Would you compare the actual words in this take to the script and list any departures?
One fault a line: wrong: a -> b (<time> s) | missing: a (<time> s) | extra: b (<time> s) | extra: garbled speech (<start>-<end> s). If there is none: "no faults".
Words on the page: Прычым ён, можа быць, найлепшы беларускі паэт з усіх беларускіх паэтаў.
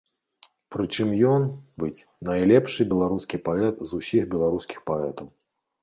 missing: можа (1.4 s)